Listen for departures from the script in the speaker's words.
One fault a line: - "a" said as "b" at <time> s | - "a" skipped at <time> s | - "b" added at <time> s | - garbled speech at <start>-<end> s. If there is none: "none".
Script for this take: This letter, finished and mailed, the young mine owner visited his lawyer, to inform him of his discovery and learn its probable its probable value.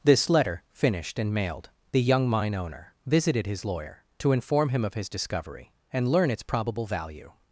- "its probable" skipped at 6.9 s